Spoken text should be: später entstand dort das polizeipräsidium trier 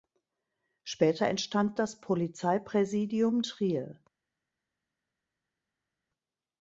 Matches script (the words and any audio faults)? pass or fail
fail